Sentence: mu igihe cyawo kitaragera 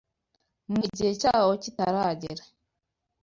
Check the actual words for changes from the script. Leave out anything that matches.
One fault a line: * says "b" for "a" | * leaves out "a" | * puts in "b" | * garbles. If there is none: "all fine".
all fine